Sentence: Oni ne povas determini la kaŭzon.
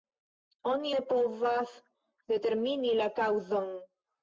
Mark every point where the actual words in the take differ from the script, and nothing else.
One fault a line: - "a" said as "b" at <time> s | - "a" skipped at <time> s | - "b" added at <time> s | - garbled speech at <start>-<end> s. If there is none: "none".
none